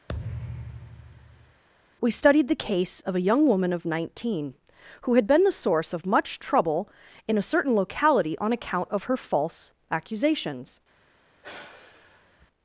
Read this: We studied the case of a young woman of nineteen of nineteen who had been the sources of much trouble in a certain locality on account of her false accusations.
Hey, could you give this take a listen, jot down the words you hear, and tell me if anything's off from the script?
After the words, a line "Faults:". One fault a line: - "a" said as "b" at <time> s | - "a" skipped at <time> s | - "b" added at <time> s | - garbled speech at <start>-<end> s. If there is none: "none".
We studied the case of a young woman of nineteen who had been the source of much trouble in a certain locality on account of her false accusations.
Faults:
- "of nineteen" skipped at 4.5 s
- "sources" said as "source" at 5.5 s